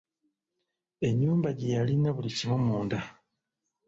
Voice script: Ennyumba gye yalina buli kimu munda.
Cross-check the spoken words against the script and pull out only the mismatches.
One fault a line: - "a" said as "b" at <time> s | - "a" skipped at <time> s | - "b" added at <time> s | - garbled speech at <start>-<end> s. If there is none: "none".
none